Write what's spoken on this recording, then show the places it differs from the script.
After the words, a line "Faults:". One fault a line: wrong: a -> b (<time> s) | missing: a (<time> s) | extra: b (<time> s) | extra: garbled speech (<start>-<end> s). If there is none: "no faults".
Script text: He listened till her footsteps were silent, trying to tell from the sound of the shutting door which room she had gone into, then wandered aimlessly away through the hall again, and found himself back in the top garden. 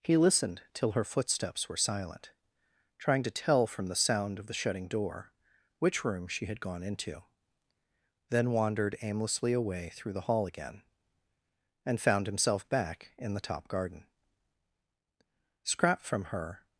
He listened till her footsteps were silent, trying to tell from the sound of the shutting door which room she had gone into, then wandered aimlessly away through the hall again, and found himself back in the top garden. Scrap from her
Faults:
extra: Scrap from her (15.6 s)